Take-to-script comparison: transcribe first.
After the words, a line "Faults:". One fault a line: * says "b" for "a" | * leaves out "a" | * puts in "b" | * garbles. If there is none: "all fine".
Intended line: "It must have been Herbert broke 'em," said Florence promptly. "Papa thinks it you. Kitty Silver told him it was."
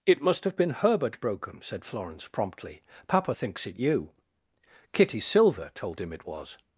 "It must have been Herbert broke 'em," said Florence promptly. "Papa thinks it you. Kitty Silver told him it was."
Faults:
all fine